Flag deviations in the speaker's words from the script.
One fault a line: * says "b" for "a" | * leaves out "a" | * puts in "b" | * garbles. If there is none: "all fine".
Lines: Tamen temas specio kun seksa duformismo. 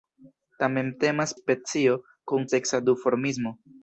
all fine